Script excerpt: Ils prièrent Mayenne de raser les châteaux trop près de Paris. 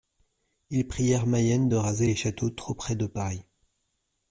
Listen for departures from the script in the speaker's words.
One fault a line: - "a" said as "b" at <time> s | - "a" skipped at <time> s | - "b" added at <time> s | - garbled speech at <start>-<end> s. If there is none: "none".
none